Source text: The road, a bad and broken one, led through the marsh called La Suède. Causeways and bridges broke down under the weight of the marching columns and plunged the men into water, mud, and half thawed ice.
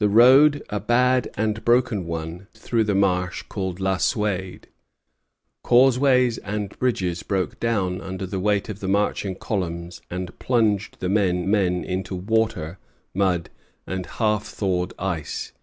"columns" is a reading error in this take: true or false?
false